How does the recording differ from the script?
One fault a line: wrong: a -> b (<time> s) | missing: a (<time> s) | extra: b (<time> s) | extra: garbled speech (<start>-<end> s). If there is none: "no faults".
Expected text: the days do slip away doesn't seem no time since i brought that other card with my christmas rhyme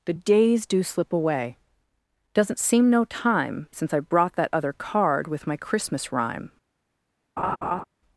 no faults